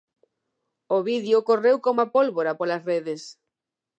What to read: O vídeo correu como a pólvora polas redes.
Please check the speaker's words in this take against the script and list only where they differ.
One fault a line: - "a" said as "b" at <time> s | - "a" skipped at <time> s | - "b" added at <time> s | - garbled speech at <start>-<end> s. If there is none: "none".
none